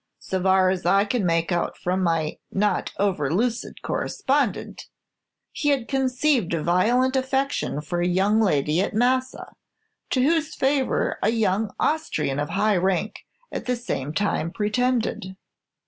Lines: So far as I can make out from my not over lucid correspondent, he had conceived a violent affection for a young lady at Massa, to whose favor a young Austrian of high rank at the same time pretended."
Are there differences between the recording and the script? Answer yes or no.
no